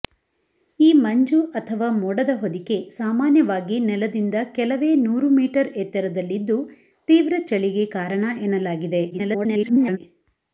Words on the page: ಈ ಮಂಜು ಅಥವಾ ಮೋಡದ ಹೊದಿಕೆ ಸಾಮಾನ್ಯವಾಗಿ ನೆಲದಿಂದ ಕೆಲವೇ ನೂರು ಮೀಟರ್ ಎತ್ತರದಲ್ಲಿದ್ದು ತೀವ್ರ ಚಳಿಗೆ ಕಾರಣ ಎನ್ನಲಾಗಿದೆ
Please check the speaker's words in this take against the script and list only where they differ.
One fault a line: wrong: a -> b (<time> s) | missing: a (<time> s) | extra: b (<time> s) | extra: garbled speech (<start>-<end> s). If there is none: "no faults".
extra: garbled speech (9.1-10.0 s)